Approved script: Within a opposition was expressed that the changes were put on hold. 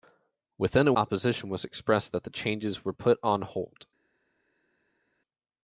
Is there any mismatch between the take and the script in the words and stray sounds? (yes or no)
no